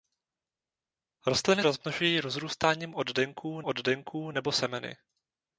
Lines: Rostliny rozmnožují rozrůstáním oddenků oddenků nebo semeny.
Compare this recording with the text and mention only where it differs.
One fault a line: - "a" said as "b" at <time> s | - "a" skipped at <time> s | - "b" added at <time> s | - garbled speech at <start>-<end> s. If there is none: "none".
none